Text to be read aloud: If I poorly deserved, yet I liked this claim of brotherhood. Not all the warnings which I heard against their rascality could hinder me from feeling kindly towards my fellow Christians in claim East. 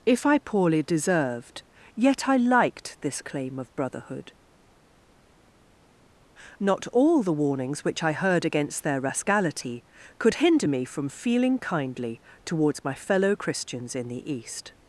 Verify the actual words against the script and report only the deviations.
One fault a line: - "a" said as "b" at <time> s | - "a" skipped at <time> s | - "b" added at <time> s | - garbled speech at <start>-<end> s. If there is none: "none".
- "claim" said as "the" at 14.1 s